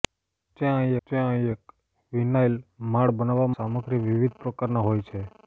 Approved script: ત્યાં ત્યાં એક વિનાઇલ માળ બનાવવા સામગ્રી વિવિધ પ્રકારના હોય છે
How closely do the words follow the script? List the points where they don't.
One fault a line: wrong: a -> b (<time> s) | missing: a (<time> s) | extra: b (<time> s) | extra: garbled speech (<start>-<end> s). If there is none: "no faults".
no faults